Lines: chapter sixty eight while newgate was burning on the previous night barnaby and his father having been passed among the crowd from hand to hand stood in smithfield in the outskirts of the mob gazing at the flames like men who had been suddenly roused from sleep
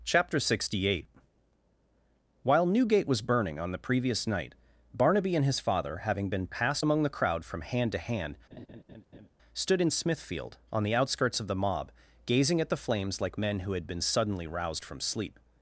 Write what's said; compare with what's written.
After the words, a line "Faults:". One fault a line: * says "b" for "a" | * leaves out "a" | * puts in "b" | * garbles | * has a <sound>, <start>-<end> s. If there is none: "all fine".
chapter sixty eight while newgate was burning on the previous night barnaby and his father having been passed among the crowd from hand to hand stood in smithfield on the outskirts of the mob gazing at the flames like men who had been suddenly roused from sleep
Faults:
* has a laugh, 8.5-9.3 s
* says "on" for "in"